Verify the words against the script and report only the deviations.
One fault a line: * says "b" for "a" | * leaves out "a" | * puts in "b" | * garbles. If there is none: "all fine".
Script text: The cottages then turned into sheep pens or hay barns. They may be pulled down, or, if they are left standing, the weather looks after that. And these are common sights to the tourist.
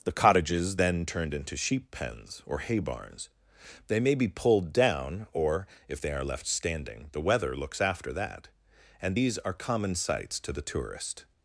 all fine